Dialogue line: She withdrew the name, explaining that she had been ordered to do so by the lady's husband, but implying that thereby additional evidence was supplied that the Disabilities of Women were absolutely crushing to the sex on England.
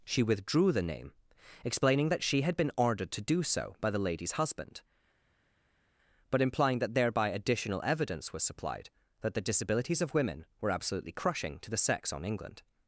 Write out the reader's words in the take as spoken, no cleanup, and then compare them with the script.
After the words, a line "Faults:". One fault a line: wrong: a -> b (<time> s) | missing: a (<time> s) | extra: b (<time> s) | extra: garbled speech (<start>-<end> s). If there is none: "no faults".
She withdrew the name, explaining that she had been ordered to do so by the lady's husband, but implying that thereby additional evidence was supplied that the Disabilities of Women were absolutely crushing to the sex on England.
Faults:
no faults